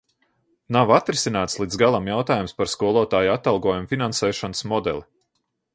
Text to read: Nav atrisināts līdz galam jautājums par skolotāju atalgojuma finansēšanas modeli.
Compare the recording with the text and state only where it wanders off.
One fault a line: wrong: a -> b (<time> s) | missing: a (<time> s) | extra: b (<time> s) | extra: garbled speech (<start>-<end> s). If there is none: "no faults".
no faults